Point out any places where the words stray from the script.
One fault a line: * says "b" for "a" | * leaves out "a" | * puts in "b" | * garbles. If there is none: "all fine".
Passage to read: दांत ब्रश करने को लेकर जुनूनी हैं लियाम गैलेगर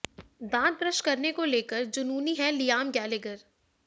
all fine